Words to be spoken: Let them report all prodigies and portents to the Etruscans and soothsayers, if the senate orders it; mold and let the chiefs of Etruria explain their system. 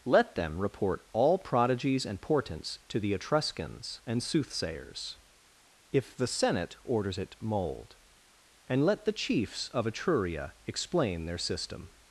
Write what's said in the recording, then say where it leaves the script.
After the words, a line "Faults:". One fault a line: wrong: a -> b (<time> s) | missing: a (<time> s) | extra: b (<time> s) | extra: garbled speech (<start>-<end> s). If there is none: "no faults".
Let them report all prodigies and portents to the Etruscans and soothsayers, if the senate orders it; mold and let the chiefs of Etruria explain their system.
Faults:
no faults